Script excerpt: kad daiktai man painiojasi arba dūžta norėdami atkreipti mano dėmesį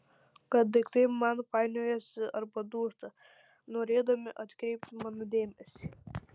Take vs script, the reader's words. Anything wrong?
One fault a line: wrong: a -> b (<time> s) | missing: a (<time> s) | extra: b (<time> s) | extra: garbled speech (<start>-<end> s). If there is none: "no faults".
no faults